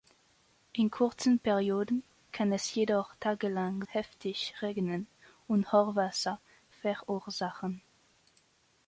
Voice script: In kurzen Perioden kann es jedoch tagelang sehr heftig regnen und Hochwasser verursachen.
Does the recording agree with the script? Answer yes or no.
no